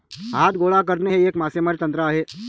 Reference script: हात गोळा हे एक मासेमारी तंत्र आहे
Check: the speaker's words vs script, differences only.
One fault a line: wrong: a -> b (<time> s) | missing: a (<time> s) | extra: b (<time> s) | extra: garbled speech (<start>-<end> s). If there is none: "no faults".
extra: करणे (0.8 s)